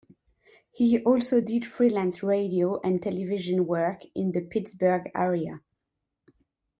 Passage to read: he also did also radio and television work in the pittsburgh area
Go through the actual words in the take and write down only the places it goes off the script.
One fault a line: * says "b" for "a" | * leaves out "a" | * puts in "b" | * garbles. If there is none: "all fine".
* says "freelance" for "also"